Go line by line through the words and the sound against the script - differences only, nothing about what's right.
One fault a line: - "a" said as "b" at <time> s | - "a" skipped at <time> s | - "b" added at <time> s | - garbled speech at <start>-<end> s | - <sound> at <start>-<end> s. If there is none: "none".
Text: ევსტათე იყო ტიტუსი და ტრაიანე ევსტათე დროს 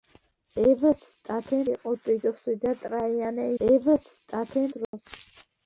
- dropout at 4.8-4.9 s